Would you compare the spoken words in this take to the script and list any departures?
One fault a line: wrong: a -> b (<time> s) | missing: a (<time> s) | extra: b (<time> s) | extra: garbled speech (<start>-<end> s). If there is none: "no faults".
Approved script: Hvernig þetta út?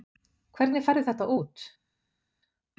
extra: færðu (0.9 s)